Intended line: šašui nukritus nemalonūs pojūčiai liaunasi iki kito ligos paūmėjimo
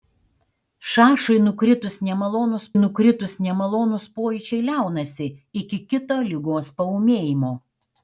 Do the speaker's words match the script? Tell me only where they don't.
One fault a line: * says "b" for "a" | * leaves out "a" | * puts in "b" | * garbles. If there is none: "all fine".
* puts in "nukritus nemalonūs"